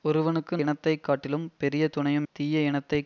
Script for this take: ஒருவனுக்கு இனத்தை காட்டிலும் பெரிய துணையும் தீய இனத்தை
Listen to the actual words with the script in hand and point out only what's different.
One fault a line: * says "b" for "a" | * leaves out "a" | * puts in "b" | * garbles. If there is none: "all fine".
all fine